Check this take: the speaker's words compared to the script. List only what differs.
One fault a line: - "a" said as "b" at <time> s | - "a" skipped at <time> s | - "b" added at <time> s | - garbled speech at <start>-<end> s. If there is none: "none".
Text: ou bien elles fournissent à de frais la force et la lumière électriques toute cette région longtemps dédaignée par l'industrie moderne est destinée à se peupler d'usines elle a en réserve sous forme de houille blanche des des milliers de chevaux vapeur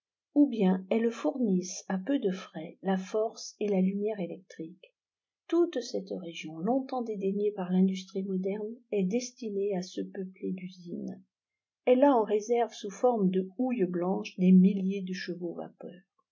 - "peu" added at 2.0 s
- "des" skipped at 14.5 s